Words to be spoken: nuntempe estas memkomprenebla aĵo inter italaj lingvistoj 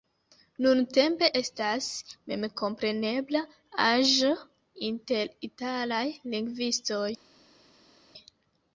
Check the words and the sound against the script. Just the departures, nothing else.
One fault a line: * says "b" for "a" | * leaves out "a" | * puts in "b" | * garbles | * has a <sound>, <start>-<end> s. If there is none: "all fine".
all fine